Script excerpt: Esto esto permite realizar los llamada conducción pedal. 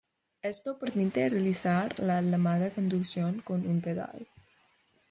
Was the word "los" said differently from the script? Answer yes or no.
yes